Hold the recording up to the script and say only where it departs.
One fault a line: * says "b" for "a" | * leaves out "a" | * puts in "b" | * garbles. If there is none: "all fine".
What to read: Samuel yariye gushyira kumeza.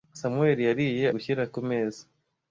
all fine